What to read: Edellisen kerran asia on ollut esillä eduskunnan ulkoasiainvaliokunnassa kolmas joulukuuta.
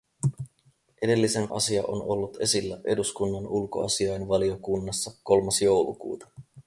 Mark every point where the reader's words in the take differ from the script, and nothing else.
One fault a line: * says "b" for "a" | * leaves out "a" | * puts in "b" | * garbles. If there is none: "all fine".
* leaves out "kerran"